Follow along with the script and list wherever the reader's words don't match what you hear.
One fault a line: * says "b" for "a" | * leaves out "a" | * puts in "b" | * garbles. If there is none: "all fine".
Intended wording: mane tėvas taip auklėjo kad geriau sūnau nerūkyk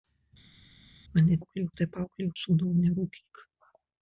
* says "auklėjo" for "tėvas"
* leaves out "kad geriau"